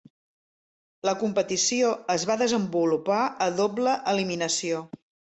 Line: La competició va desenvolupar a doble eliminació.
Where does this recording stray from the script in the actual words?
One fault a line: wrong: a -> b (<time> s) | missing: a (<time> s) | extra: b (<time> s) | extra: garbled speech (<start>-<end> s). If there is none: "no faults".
extra: es (2.1 s)